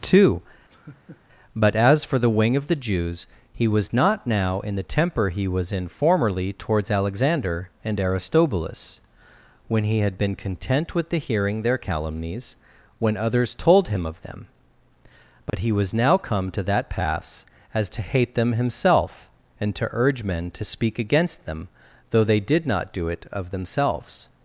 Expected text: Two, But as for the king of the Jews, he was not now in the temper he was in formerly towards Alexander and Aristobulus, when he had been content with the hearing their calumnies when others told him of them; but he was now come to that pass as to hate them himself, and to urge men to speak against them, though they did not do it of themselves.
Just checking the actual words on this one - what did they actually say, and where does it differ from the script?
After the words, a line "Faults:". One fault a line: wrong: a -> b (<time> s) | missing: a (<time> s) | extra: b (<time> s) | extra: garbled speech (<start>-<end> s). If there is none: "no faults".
Two, But as for the wing of the Jews, he was not now in the temper he was in formerly towards Alexander and Aristobulus, when he had been content with the hearing their calumnies when others told him of them; but he was now come to that pass as to hate them himself, and to urge men to speak against them, though they did not do it of themselves.
Faults:
wrong: king -> wing (2.3 s)